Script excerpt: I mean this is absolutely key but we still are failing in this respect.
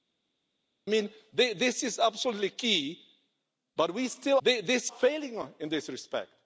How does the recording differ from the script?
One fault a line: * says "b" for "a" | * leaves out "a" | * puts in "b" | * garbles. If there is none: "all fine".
* says "this" for "are"